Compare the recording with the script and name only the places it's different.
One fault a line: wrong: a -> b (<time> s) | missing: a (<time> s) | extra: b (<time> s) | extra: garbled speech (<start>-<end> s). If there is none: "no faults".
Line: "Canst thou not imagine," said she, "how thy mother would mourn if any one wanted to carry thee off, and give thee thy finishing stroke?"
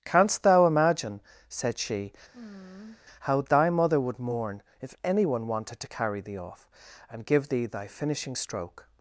missing: not (0.7 s)